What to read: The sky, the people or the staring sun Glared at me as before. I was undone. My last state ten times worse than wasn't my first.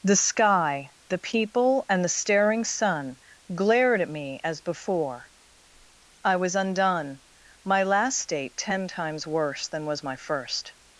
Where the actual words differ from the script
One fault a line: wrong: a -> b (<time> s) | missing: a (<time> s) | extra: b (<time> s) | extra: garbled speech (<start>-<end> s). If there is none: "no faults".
wrong: or -> and (1.9 s)
wrong: wasn't -> was (9.9 s)